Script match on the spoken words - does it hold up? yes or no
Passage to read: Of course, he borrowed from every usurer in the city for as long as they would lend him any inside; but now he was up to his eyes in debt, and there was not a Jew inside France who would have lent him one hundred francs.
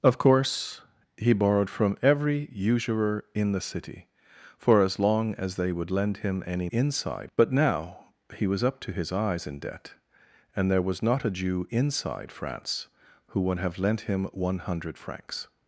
yes